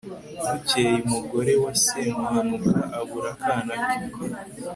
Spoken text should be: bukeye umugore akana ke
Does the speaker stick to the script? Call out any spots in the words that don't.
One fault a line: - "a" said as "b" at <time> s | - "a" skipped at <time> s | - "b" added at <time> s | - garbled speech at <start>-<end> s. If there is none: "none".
- "wa semuhanuka abura" added at 1.6 s